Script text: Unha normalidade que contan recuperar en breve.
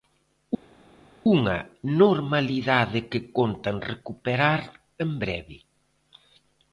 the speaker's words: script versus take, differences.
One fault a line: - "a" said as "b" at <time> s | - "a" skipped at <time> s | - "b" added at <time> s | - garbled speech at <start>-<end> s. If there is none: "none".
none